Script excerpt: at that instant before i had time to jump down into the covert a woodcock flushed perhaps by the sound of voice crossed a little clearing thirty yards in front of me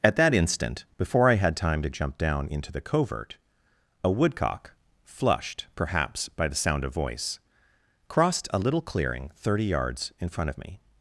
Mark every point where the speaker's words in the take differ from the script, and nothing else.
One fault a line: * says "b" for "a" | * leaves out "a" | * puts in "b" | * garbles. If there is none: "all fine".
all fine